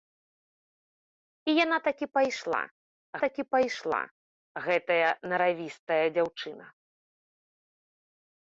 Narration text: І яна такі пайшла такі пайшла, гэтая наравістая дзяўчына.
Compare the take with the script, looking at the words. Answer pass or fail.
pass